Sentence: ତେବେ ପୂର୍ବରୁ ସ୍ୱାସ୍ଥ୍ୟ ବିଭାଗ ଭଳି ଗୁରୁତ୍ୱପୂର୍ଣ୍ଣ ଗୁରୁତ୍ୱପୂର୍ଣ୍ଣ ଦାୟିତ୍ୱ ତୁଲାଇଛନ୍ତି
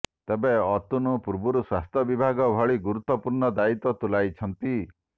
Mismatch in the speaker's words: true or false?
true